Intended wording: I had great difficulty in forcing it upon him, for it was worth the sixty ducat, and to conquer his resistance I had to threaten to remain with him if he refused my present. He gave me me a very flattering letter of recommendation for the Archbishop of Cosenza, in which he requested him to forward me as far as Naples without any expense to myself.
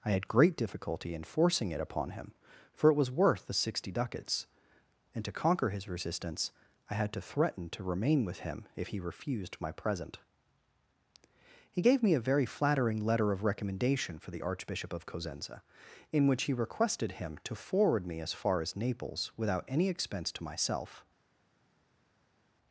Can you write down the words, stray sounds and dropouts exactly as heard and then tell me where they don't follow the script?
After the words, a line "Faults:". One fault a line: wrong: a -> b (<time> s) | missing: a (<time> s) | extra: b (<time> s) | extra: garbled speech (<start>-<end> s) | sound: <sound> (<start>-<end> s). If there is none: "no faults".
I had great difficulty in forcing it upon him, for it was worth the sixty ducats, and to conquer his resistance I had to threaten to remain with him if he refused my present. He gave me a very flattering letter of recommendation for the Archbishop of Cosenza, in which he requested him to forward me as far as Naples without any expense to myself.
Faults:
wrong: ducat -> ducats (3.9 s)
missing: me (12.1 s)